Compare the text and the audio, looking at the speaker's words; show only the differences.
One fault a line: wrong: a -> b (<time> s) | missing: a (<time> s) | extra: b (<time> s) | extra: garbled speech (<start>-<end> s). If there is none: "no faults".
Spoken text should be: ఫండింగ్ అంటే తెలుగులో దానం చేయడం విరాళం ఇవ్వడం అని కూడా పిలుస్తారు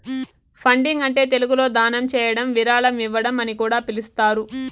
no faults